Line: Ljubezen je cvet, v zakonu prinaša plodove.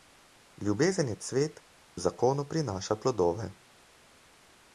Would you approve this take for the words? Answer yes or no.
yes